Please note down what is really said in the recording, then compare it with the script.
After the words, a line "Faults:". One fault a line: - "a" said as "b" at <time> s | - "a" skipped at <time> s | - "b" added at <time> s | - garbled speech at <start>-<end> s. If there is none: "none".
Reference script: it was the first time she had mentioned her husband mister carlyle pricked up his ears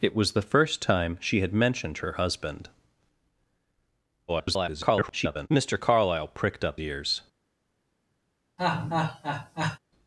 it was the first time she had mentioned her husband [garbled] mister carlyle pricked up ears
Faults:
- garbled speech at 4.3-5.5 s
- "his" skipped at 6.8 s